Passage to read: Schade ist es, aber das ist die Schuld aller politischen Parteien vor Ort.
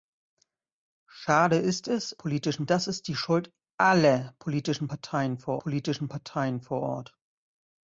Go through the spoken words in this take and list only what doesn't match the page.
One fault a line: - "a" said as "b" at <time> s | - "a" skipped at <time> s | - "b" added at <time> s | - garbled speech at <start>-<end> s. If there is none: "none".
- "aber" said as "politischen" at 2.2 s
- "politischen Parteien vor" added at 5.6 s